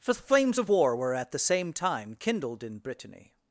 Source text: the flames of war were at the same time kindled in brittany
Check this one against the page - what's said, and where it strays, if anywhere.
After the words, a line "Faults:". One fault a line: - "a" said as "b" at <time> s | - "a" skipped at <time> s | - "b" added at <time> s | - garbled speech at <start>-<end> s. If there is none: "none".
for the flames of war were at the same time kindled in brittany
Faults:
- "for" added at 0.0 s